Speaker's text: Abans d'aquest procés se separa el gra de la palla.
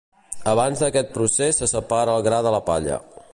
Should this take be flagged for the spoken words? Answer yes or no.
no